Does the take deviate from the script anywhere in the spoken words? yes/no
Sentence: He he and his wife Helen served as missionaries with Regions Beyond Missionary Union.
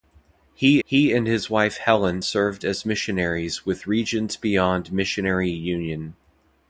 no